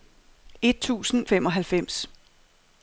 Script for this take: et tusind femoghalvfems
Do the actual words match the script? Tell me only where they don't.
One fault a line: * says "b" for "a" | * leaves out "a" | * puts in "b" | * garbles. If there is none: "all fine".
all fine